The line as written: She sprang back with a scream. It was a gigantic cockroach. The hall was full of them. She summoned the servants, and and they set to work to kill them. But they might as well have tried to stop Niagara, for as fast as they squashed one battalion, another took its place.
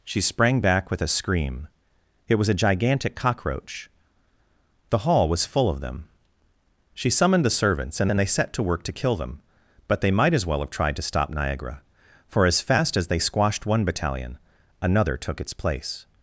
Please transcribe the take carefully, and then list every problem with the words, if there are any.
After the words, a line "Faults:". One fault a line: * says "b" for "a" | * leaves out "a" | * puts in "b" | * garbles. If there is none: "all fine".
She sprang back with a scream. It was a gigantic cockroach. The hall was full of them. She summoned the servants, and and they set to work to kill them. But they might as well have tried to stop Niagara, for as fast as they squashed one battalion, another took its place.
Faults:
all fine